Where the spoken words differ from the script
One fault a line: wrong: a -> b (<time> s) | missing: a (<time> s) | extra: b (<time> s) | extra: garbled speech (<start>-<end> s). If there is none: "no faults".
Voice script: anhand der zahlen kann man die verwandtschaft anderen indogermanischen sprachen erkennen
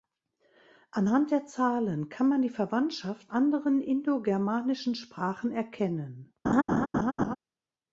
no faults